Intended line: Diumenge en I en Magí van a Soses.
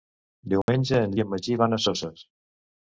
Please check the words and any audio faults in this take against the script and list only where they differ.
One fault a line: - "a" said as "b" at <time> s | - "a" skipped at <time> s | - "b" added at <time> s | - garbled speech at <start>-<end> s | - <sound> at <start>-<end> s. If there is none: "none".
- dropout at 0.6-0.7 s